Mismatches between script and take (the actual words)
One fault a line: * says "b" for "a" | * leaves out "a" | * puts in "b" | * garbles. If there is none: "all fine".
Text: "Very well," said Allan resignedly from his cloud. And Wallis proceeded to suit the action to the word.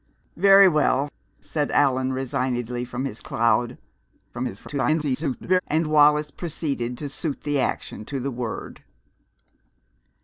* garbles